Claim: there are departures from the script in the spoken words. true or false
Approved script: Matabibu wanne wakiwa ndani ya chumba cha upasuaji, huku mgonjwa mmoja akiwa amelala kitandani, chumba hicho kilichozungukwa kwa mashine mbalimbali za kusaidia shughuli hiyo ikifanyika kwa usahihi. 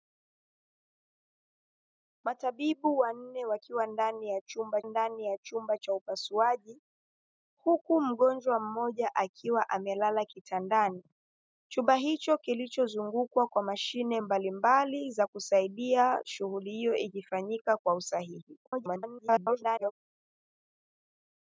true